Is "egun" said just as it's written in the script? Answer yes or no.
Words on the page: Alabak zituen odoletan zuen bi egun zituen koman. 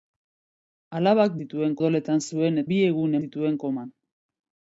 yes